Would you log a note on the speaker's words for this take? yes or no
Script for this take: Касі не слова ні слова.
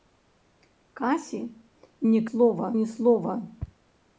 no